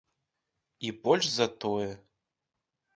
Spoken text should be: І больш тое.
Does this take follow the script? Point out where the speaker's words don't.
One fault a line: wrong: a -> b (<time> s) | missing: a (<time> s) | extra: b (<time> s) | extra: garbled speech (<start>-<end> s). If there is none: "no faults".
extra: за (1.3 s)